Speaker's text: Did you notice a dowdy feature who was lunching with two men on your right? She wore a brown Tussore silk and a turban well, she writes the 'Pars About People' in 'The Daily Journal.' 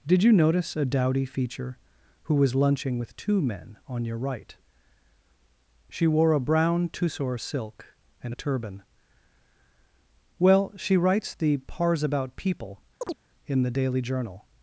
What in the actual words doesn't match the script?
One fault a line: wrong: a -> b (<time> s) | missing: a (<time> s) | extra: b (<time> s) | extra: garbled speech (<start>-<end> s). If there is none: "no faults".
no faults